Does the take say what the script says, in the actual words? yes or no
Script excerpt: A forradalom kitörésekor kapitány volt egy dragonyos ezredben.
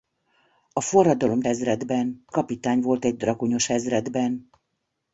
no